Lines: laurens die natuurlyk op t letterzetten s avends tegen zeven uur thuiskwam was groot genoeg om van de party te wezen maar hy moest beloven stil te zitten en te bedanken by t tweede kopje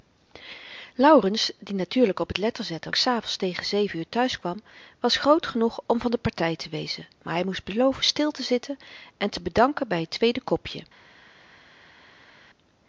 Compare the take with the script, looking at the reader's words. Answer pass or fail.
pass